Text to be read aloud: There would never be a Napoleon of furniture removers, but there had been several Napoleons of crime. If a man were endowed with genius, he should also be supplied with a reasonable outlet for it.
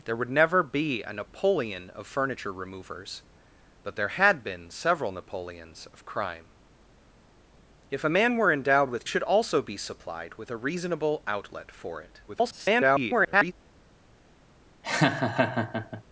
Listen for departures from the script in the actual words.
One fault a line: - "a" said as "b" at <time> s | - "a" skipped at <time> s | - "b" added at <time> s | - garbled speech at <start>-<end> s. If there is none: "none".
- "genius he" skipped at 9.1 s
- garbled speech at 12.3-13.5 s